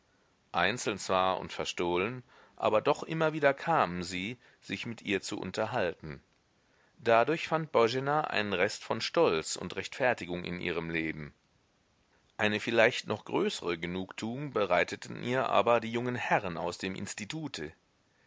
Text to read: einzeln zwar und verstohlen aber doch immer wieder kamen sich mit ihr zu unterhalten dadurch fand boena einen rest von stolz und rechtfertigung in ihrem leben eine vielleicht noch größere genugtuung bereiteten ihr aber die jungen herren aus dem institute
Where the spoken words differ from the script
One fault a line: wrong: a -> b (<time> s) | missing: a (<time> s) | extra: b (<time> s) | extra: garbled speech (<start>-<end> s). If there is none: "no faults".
extra: sie (4.0 s)